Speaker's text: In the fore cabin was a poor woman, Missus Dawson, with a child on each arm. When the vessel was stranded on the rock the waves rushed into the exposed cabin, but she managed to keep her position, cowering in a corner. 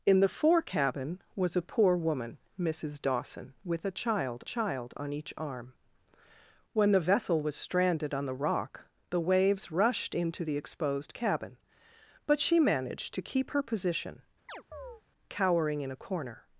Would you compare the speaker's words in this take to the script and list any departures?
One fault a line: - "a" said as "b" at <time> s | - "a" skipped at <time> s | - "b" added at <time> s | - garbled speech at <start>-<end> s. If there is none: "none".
- "child" added at 4.4 s